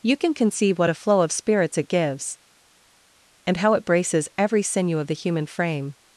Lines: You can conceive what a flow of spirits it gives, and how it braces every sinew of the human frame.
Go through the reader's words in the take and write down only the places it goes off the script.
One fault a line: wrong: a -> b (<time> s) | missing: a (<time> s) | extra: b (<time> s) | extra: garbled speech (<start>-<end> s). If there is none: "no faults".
no faults